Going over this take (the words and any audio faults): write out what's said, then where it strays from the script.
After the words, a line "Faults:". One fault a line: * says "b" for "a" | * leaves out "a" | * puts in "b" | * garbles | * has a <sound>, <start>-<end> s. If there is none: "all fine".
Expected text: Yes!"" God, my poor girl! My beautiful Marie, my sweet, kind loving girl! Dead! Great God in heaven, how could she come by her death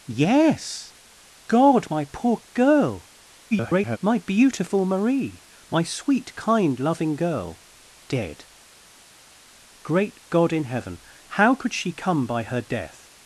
Yes!"" God, my poor girl! [garbled] My beautiful Marie, my sweet, kind loving girl! Dead! Great God in heaven, how could she come by her death
Faults:
* garbles